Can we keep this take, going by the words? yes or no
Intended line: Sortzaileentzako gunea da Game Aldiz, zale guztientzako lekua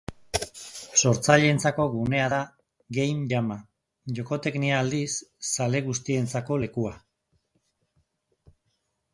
no